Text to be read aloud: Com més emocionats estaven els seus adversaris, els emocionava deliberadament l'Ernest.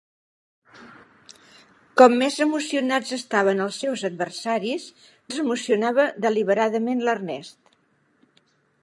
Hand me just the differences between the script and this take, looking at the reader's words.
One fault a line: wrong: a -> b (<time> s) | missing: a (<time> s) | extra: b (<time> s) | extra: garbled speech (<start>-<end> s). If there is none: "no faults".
no faults